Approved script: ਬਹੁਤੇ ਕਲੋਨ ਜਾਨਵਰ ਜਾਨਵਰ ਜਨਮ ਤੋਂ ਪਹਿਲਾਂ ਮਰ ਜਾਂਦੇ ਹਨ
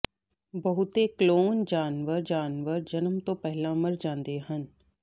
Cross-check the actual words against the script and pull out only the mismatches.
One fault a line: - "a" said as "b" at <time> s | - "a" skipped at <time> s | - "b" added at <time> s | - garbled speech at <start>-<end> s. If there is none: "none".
none